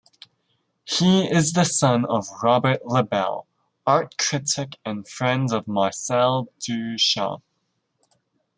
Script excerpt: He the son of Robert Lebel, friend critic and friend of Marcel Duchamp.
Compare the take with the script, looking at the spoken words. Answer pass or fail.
fail